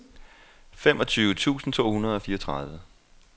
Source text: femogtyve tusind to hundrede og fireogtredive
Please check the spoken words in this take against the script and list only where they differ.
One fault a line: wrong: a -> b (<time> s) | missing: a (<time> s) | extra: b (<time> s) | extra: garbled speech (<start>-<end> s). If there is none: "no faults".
no faults